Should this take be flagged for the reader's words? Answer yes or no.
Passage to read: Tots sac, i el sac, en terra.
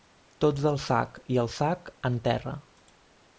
yes